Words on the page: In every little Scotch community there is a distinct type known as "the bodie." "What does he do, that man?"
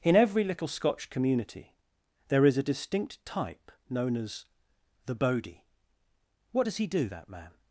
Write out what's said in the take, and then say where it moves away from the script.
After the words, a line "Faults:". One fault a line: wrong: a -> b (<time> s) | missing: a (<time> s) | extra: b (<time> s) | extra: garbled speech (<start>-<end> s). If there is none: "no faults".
In every little Scotch community there is a distinct type known as "the bodie." "What does he do, that man?"
Faults:
no faults